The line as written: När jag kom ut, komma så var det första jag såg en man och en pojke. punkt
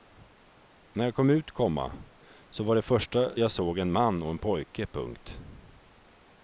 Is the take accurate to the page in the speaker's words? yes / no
yes